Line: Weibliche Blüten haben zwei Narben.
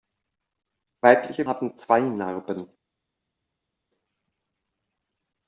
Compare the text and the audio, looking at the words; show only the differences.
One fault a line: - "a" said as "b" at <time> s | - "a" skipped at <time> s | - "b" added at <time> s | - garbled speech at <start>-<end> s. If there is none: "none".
- "Blüten" skipped at 1.4 s